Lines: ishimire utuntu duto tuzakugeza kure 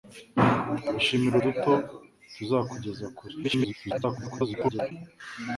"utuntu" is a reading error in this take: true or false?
true